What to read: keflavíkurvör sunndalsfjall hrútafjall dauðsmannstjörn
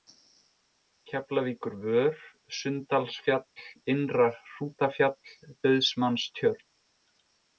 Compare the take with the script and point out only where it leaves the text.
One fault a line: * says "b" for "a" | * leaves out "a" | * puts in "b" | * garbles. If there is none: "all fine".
* puts in "innra"